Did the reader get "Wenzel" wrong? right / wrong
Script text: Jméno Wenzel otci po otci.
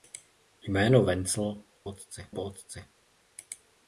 right